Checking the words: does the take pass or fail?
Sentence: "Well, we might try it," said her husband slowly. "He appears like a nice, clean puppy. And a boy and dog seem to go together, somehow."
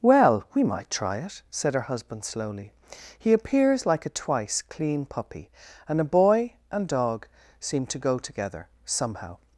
fail